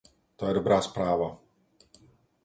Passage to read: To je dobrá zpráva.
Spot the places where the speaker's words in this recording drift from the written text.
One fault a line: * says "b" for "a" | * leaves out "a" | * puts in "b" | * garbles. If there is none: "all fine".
all fine